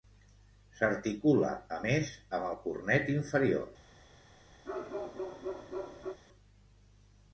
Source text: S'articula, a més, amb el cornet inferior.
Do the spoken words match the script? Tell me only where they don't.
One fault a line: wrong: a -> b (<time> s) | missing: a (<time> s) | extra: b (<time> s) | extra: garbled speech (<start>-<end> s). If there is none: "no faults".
no faults